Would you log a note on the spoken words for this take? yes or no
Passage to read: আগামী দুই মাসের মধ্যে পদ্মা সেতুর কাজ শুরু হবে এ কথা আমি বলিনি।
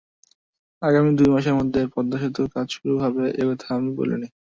no